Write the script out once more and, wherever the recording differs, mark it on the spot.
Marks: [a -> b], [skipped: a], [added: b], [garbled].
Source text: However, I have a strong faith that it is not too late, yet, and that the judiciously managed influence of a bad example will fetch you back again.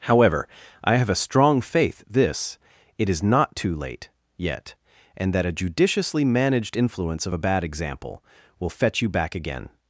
However, I have a strong faith [that -> this] it is not too late, yet, and that [the -> a] judiciously managed influence of a bad example will fetch you back again.